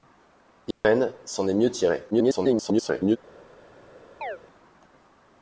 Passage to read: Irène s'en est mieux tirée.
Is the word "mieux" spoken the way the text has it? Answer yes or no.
yes